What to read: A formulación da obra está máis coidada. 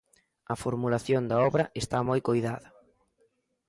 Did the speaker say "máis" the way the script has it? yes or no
no